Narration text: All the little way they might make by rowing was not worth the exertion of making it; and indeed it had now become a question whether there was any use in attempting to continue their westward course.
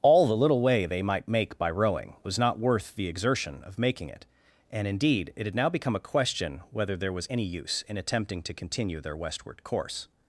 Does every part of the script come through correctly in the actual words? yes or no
yes